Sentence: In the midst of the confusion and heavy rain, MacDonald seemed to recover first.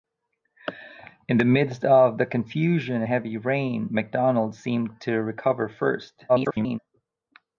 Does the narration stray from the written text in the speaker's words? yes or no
yes